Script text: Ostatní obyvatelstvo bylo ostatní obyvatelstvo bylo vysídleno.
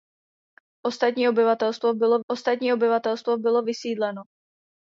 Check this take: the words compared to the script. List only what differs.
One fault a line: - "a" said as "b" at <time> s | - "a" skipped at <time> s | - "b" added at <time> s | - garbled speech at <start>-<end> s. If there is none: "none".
none